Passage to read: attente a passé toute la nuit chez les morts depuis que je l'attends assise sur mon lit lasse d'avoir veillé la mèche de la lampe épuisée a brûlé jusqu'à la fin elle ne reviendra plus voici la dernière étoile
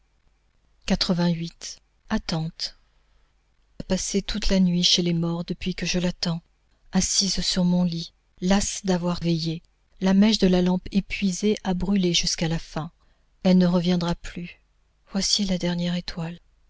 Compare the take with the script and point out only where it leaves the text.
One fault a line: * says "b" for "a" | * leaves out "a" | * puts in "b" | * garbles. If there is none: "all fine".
all fine